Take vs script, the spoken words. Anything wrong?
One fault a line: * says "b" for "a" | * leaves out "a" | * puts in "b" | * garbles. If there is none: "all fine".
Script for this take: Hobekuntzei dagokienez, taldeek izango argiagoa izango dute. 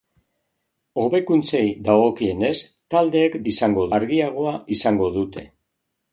all fine